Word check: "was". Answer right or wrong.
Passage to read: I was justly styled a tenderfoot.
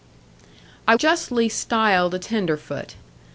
wrong